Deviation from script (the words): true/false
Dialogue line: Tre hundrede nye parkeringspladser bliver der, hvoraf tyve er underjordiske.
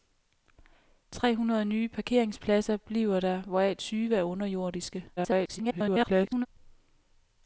true